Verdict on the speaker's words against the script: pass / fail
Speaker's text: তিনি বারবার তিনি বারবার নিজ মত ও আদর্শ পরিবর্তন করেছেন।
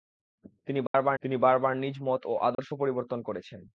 pass